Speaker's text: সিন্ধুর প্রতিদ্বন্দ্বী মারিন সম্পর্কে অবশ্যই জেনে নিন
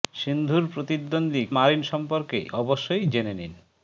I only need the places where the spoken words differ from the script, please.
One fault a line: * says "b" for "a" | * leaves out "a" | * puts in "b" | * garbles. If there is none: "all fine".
all fine